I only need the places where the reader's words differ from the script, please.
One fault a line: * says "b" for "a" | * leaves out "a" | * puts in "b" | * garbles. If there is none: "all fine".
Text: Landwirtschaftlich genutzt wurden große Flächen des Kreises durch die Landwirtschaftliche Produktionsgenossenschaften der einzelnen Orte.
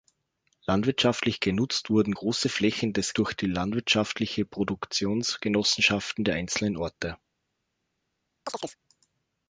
* leaves out "Kreises"